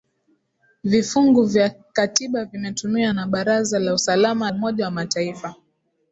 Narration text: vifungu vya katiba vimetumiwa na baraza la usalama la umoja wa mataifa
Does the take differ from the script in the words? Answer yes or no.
yes